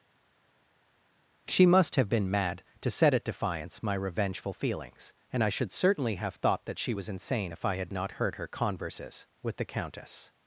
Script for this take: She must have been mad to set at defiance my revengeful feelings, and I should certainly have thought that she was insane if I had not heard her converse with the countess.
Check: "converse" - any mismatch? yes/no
yes